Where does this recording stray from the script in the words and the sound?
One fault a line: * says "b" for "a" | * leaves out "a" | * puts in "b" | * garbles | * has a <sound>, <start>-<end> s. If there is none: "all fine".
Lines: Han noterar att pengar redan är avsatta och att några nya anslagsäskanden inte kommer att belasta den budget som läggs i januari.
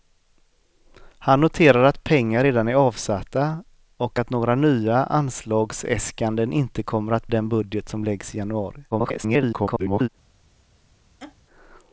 * leaves out "belasta"
* garbles
* has a laugh, 11.2-11.4 s